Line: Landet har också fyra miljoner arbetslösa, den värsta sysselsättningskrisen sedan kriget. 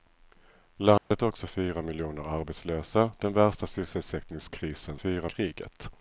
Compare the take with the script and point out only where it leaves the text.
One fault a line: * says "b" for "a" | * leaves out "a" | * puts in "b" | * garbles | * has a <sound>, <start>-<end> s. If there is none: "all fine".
* has a dropout, 1.0-1.1 s
* says "fyra" for "sedan"